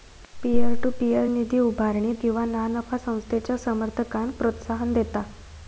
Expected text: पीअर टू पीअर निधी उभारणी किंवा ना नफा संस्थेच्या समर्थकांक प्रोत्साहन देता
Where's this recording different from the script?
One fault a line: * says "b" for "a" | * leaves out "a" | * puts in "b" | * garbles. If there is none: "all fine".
all fine